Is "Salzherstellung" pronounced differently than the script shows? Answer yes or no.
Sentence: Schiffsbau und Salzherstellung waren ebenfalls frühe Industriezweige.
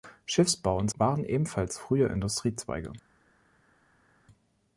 yes